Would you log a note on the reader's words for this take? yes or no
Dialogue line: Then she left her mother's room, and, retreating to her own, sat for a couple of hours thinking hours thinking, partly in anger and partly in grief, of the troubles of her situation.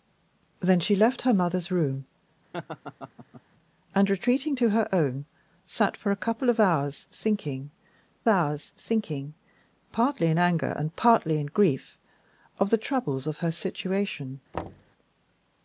no